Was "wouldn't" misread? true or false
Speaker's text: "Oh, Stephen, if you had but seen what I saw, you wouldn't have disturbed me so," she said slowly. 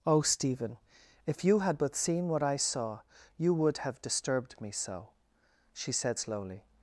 true